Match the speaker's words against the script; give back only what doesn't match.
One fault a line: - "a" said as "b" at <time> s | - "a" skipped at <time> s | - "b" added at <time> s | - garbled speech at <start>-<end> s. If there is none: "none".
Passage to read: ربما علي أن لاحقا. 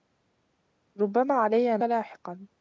none